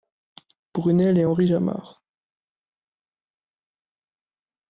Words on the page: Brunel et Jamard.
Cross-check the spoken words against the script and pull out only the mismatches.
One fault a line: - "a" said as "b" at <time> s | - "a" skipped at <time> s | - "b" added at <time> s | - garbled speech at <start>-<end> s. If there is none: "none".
- "Henri" added at 1.2 s